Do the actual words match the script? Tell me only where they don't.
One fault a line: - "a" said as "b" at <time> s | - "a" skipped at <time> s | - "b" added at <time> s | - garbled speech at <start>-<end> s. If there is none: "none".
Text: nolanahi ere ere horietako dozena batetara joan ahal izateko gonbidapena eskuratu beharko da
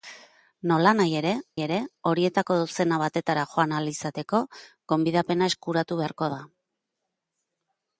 none